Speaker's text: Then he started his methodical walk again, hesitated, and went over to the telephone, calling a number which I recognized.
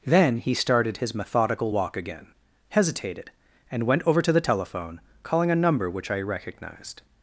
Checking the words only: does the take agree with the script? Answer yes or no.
yes